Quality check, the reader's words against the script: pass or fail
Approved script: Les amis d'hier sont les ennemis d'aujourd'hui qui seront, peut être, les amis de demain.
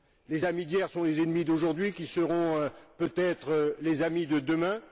pass